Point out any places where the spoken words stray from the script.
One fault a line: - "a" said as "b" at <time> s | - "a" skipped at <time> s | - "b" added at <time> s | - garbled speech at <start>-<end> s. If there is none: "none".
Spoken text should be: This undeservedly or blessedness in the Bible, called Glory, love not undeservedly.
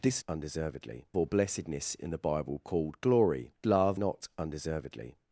none